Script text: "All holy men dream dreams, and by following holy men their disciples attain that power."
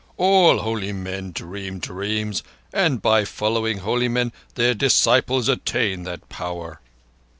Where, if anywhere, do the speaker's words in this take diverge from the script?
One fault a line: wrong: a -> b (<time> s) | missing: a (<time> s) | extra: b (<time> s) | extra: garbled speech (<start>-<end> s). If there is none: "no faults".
no faults